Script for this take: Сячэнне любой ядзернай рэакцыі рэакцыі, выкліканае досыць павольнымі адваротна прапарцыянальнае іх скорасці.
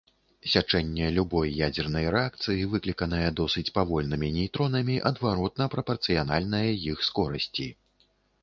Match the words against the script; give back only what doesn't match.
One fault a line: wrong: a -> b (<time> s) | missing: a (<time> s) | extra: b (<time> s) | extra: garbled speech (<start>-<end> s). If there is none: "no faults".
missing: рэакцыі (2.6 s)
extra: нейтронамі (4.4 s)